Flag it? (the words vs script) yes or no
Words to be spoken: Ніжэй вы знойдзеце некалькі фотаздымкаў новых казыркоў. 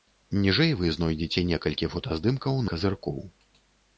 yes